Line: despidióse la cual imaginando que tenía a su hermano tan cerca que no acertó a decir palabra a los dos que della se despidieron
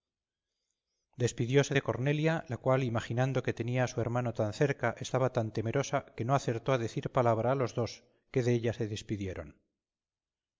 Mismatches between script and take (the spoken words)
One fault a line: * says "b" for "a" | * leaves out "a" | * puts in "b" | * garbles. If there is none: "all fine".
* puts in "de cornelia"
* puts in "estaba tan temerosa"